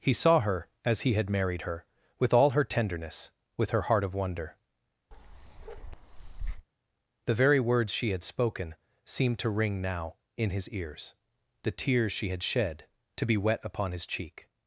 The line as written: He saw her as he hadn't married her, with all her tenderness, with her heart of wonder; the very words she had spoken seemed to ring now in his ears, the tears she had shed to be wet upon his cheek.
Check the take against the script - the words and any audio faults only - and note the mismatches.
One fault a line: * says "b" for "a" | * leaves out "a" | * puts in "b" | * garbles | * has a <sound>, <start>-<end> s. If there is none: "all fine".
* says "had" for "hadn't"
* has a bark, 5.1-6.7 s